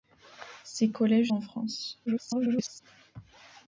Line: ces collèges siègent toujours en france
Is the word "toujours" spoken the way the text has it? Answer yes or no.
no